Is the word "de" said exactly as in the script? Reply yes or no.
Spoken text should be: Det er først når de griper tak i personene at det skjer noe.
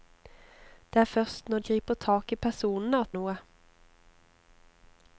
no